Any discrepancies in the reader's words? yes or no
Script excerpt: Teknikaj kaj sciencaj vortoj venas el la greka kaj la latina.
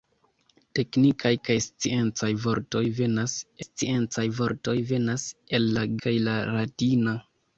yes